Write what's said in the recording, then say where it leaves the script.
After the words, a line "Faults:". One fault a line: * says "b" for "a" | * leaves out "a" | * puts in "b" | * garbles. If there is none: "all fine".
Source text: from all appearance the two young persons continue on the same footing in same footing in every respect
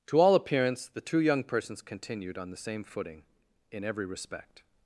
to all appearance the two young persons continued on the same footing in every respect
Faults:
* says "to" for "from"
* says "continued" for "continue"
* leaves out "same footing in"